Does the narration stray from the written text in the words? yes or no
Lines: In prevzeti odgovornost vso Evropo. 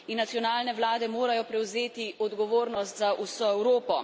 yes